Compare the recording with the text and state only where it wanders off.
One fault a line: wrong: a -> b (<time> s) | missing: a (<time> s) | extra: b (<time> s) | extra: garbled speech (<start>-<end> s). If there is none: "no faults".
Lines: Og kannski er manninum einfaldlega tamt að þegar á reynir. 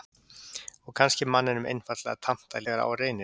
no faults